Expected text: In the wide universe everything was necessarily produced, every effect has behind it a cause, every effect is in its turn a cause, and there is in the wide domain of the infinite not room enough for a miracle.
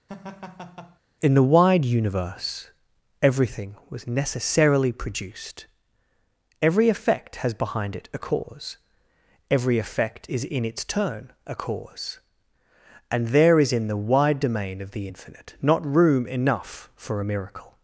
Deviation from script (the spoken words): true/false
false